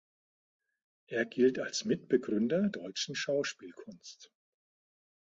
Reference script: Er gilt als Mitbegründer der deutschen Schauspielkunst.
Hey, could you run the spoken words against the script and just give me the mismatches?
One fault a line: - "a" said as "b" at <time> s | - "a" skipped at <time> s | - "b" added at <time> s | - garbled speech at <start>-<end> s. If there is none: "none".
- "der" skipped at 2.7 s